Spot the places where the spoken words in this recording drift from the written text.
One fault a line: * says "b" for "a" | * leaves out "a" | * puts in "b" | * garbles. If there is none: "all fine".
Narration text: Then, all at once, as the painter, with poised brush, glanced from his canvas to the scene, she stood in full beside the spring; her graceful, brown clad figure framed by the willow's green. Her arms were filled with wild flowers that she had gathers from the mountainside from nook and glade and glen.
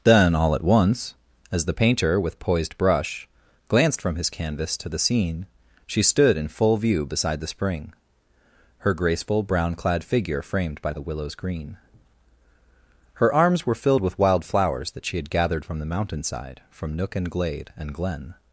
* puts in "view"
* says "gathered" for "gathers"